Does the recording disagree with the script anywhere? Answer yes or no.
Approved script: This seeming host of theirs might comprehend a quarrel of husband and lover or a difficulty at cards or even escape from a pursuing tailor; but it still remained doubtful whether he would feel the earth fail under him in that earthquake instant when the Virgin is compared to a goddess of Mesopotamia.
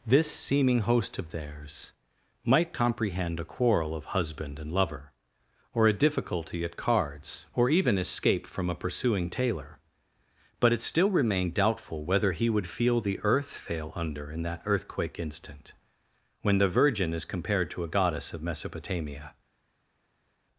yes